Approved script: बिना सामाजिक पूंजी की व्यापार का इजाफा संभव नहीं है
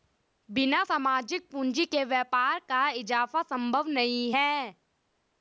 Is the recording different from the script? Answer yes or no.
yes